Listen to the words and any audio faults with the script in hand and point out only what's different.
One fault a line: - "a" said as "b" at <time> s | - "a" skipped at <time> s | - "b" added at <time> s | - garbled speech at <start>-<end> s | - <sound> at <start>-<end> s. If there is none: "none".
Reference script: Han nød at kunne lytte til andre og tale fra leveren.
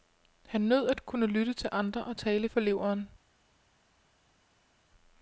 none